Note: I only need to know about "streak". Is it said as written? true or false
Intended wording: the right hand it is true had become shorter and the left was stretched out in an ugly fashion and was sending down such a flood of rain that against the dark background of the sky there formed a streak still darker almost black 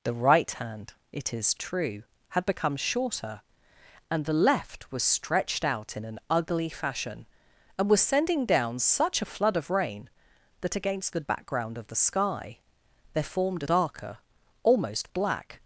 false